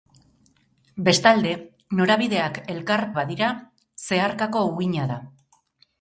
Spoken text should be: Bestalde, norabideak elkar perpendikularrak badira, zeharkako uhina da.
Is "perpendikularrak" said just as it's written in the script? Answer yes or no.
no